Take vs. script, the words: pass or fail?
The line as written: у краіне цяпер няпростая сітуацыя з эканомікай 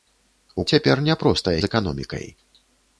fail